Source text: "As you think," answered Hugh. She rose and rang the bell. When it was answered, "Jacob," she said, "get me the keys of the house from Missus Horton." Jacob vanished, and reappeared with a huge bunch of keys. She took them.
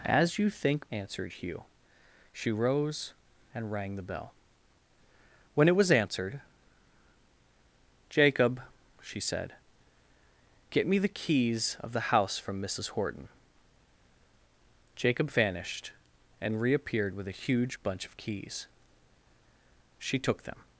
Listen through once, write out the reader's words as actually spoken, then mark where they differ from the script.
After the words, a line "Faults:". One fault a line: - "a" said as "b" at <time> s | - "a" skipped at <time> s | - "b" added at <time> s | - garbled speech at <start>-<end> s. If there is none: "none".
"As you think," answered Hugh. She rose and rang the bell. When it was answered, "Jacob," she said, "get me the keys of the house from Missus Horton." Jacob vanished, and reappeared with a huge bunch of keys. She took them.
Faults:
none